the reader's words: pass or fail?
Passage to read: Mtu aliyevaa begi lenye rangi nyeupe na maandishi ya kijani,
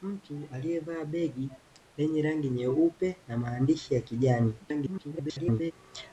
fail